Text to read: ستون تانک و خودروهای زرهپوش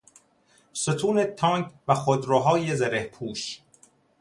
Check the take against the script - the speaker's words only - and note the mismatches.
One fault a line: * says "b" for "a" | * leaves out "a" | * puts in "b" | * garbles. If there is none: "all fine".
all fine